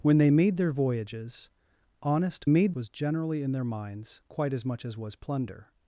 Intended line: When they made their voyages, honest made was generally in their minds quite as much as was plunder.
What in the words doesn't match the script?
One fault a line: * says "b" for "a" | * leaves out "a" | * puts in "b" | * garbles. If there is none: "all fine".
all fine